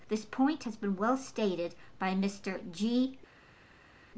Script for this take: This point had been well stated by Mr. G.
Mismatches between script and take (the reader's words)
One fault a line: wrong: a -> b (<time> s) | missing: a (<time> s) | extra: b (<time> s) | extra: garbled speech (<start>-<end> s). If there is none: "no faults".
wrong: had -> has (0.6 s)